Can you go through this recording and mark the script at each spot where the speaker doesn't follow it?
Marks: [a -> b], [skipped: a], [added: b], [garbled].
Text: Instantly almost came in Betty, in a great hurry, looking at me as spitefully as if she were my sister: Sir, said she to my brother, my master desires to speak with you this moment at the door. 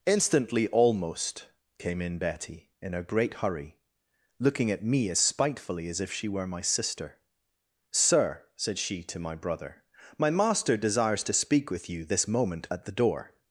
Instantly almost came in Betty, in a great hurry, looking at me as spitefully as if she were my sister: Sir, said she to my brother, my master desires to speak with you this moment at the door.